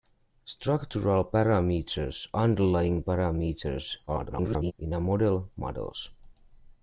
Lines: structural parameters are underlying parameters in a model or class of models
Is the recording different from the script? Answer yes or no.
yes